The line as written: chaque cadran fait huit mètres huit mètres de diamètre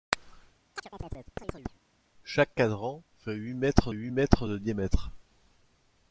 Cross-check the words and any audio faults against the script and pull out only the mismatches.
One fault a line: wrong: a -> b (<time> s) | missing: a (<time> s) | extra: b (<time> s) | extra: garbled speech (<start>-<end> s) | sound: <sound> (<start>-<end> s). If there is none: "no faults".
sound: chirp (0.8-1.8 s)